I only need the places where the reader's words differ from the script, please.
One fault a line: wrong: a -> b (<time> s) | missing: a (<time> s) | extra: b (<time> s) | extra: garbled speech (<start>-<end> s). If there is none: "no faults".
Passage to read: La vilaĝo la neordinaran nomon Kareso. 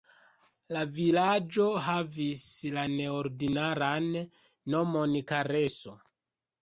extra: havis (1.9 s)